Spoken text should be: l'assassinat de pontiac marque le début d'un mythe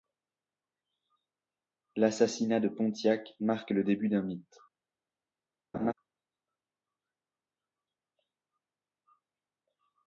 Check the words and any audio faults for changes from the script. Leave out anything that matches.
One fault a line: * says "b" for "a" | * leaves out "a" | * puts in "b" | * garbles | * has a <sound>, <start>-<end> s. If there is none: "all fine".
* has a laugh, 5.7-5.9 s